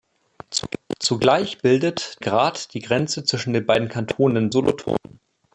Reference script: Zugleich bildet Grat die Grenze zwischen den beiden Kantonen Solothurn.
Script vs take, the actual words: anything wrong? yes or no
no